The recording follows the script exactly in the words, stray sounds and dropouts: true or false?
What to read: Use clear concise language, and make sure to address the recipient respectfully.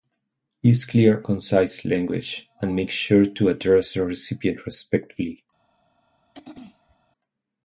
false